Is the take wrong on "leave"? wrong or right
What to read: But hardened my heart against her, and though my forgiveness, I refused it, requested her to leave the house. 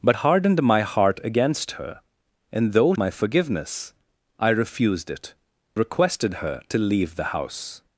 right